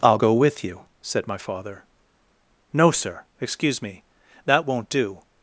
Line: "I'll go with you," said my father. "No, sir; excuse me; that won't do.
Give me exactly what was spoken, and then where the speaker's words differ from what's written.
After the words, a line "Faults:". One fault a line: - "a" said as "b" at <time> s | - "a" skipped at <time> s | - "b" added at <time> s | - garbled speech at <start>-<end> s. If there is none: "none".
"I'll go with you," said my father. "No, sir; excuse me; that won't do.
Faults:
none